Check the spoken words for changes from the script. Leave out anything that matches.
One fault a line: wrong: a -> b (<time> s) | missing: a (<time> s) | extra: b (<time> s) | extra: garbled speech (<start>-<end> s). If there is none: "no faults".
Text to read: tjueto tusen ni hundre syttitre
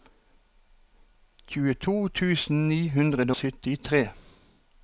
no faults